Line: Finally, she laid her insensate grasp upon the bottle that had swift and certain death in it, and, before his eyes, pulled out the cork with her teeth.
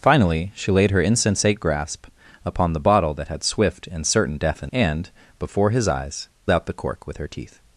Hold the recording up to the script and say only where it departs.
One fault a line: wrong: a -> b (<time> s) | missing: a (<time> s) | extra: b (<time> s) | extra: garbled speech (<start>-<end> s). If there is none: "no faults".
missing: it (4.7 s)
missing: pulled (6.3 s)